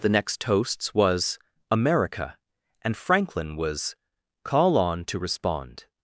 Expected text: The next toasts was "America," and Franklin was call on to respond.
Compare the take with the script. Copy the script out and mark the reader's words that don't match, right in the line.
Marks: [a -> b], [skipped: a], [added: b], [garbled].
The next toasts was "America," and Franklin was call on to respond.